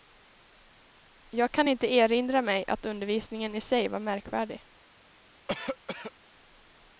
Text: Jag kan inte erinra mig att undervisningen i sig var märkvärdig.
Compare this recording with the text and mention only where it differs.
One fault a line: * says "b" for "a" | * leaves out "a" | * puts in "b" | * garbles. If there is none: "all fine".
all fine